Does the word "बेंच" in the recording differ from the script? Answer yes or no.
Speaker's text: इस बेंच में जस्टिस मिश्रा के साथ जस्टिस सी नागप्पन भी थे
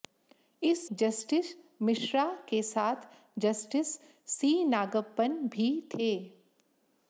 yes